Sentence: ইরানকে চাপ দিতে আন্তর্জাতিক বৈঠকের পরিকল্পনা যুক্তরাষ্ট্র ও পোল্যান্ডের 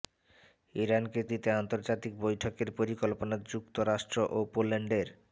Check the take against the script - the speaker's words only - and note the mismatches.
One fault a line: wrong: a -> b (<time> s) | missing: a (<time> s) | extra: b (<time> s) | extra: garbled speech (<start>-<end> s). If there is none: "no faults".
missing: চাপ (1.2 s)